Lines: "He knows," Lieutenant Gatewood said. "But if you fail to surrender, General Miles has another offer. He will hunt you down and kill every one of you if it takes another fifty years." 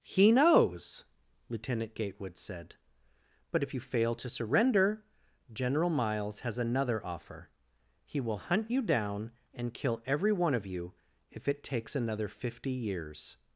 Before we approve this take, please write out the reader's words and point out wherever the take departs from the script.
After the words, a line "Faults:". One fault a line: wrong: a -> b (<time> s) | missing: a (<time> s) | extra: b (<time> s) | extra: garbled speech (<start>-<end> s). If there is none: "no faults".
"He knows," Lieutenant Gatewood said. "But if you fail to surrender, General Miles has another offer. He will hunt you down and kill every one of you if it takes another fifty years."
Faults:
no faults